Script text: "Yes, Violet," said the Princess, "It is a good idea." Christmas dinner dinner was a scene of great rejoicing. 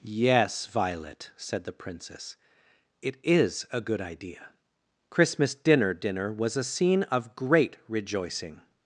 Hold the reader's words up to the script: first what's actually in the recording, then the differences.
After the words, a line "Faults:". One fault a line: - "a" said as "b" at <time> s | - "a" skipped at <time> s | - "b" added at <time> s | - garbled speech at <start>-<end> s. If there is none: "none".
"Yes, Violet," said the Princess, "It is a good idea." Christmas dinner dinner was a scene of great rejoicing.
Faults:
none